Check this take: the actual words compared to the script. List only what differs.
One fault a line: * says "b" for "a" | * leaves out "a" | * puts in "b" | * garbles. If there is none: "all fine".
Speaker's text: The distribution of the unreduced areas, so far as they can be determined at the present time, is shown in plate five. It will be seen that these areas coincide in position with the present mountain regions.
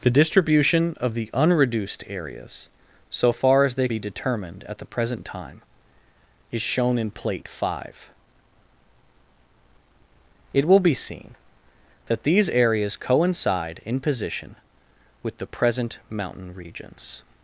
* leaves out "can"